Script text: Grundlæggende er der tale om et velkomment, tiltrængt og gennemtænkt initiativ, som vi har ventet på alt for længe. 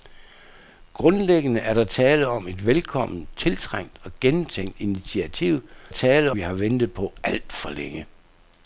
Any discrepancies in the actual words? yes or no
yes